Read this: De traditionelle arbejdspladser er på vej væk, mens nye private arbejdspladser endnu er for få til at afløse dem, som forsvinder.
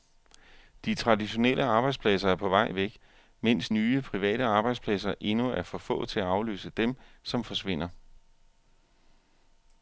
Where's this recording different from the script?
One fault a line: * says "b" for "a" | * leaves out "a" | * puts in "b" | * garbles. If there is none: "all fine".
all fine